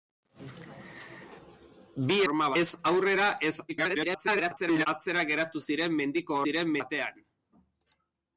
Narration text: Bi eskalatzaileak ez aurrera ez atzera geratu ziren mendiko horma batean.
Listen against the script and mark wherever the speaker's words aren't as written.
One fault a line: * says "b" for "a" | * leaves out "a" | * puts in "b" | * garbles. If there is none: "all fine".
* says "horma" for "eskalatzaileak"
* garbles
* says "ziren" for "horma"